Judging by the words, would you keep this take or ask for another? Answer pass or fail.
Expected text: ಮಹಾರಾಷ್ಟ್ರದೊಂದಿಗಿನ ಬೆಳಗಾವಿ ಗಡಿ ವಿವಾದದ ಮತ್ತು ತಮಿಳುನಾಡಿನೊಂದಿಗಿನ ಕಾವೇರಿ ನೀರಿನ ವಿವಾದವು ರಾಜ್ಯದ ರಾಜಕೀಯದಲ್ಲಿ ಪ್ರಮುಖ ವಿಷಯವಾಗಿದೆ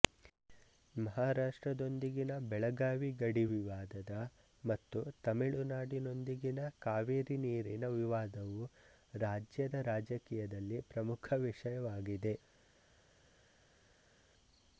pass